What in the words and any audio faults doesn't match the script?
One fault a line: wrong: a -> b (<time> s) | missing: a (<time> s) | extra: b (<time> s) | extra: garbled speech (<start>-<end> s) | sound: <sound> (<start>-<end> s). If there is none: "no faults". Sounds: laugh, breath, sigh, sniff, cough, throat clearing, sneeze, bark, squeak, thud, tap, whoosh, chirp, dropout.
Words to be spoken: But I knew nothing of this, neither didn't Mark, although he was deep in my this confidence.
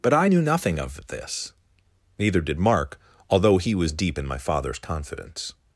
wrong: didn't -> did (2.4 s)
wrong: this -> father's (4.4 s)